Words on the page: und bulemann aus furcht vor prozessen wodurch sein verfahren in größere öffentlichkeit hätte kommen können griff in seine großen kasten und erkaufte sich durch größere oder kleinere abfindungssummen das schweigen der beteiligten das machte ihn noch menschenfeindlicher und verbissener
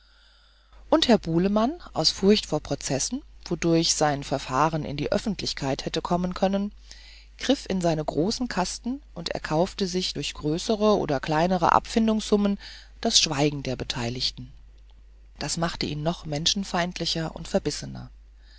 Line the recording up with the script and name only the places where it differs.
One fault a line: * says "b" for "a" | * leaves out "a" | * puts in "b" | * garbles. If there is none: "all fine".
* puts in "herr"
* says "die" for "größere"